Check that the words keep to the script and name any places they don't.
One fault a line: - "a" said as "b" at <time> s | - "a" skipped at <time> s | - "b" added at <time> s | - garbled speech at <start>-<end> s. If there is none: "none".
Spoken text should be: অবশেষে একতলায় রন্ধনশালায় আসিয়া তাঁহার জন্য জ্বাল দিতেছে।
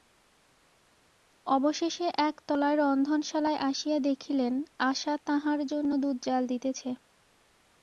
- "দেখিলেন আশা" added at 4.0 s
- "দুধ" added at 6.0 s